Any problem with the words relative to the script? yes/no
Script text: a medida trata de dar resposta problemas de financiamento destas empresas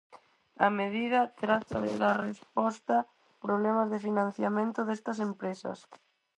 no